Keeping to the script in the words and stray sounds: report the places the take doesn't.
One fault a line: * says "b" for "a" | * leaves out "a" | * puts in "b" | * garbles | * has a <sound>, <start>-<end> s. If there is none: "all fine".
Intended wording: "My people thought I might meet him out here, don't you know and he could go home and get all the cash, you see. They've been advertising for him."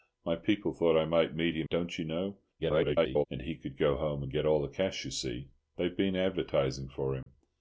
* leaves out "out here"
* garbles
* has a dropout, 7.2-7.3 s